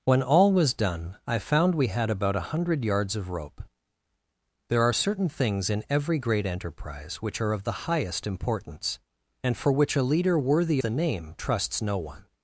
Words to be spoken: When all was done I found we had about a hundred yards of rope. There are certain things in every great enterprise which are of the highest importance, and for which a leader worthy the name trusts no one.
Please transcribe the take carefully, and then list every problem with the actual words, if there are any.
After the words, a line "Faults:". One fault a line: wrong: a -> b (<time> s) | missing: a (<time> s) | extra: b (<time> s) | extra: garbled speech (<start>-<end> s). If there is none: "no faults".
When all was done I found we had about a hundred yards of rope. There are certain things in every great enterprise which are of the highest importance, and for which a leader worthy the name trusts no one.
Faults:
no faults